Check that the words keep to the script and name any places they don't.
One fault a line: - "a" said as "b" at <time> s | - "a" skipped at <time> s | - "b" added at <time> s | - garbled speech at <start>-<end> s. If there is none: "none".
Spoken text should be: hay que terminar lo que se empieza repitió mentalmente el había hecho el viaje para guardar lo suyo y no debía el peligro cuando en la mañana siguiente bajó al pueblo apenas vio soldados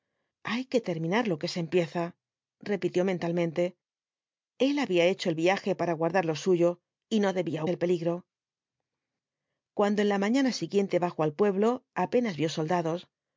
none